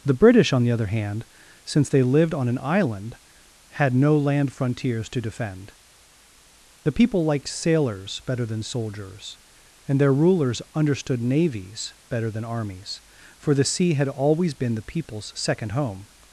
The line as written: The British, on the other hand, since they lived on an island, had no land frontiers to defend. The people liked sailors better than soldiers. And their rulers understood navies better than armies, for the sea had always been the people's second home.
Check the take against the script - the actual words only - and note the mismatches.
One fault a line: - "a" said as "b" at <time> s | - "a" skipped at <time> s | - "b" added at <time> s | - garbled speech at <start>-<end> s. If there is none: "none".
none